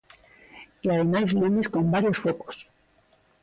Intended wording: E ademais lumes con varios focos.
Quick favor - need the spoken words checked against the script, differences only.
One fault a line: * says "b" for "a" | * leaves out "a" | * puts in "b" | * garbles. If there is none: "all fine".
all fine